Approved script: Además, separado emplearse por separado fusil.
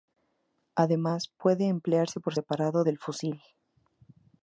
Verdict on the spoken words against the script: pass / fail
fail